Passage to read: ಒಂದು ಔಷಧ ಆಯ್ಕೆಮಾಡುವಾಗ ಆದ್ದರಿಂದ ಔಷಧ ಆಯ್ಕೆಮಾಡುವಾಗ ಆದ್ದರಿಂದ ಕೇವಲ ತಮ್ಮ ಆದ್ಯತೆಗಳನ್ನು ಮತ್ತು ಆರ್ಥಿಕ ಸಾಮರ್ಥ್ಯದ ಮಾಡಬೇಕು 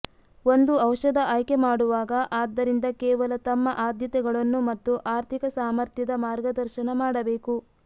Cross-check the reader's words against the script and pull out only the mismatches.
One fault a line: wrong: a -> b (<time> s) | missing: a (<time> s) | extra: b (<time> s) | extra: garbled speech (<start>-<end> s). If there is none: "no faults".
missing: ಔಷಧ ಆಯ್ಕೆಮಾಡುವಾಗ ಆದ್ದರಿಂದ (2.9 s)
extra: ಮಾರ್ಗದರ್ಶನ (6.3 s)